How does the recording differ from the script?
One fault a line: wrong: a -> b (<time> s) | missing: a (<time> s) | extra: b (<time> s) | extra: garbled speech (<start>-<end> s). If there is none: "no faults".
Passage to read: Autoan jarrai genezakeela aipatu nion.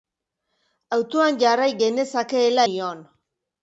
missing: aipatu (2.7 s)